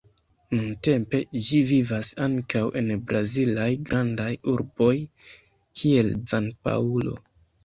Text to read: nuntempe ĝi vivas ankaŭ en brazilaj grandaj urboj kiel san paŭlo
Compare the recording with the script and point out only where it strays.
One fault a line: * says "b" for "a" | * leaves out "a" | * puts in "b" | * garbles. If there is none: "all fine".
all fine